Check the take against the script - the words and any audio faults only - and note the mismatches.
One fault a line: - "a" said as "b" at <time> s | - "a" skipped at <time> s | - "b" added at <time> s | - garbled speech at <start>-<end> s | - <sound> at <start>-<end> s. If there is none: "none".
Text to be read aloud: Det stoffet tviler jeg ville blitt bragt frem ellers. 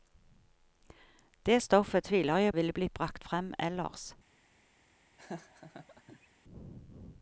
- laugh at 5.2-6.3 s